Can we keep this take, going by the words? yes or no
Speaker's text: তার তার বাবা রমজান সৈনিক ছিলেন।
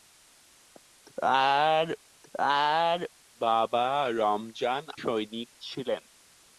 yes